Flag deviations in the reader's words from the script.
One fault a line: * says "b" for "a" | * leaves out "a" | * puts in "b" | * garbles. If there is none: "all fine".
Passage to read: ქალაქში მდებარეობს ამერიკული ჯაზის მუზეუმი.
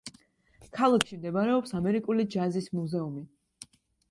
all fine